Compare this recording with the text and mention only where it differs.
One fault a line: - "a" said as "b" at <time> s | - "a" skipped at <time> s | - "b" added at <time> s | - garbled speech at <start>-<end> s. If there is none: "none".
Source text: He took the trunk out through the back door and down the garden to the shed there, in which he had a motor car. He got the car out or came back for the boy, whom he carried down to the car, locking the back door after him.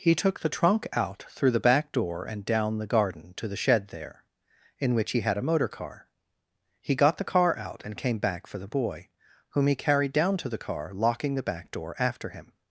- "or" said as "and" at 7.8 s